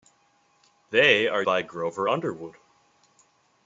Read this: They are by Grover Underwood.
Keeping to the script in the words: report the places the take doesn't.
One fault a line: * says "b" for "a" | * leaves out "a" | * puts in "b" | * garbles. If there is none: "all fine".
all fine